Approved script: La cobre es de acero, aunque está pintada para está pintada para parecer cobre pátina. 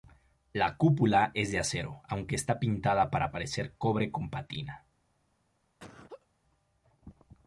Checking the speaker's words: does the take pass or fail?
fail